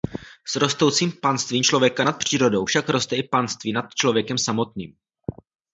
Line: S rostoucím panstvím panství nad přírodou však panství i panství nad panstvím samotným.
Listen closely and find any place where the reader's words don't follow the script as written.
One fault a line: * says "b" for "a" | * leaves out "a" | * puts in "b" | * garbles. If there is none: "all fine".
* says "člověka" for "panství"
* says "roste" for "panství"
* says "člověkem" for "panstvím"